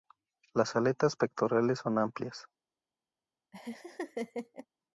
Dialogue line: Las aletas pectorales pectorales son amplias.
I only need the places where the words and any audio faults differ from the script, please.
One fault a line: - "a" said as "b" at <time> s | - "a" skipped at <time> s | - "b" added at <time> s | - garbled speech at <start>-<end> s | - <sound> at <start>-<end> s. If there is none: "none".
- "pectorales" skipped at 1.8 s
- laugh at 3.5-4.7 s